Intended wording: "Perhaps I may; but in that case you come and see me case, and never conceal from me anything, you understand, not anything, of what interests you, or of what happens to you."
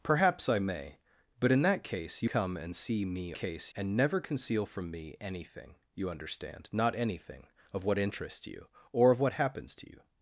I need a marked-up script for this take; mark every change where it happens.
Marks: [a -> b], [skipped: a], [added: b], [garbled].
"Perhaps I may; but in that case you come and see me case, and never conceal from me anything, you understand, not anything, of what interests you, or of what happens to you."